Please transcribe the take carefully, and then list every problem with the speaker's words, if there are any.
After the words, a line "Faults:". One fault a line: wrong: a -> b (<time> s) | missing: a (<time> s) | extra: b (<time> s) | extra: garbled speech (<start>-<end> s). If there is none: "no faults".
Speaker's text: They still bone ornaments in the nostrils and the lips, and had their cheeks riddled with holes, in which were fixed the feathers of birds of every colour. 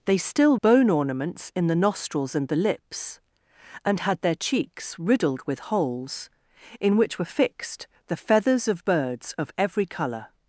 They still bone ornaments in the nostrils and the lips, and had their cheeks riddled with holes, in which were fixed the feathers of birds of every colour.
Faults:
no faults